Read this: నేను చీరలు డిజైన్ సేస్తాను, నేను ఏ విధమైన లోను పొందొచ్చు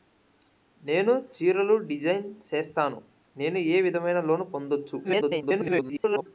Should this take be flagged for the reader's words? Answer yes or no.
yes